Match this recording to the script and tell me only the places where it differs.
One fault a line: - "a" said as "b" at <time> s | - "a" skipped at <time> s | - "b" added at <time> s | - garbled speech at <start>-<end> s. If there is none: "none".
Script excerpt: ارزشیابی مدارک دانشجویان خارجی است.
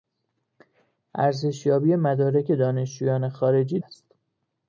none